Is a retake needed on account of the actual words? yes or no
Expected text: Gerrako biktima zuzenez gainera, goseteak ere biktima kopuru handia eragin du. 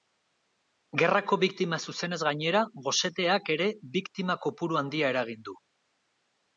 no